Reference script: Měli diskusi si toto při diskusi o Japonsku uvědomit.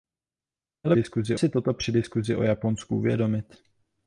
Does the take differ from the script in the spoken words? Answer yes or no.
no